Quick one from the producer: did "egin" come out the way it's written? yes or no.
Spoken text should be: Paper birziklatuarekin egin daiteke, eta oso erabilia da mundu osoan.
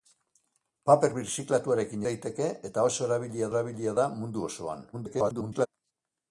no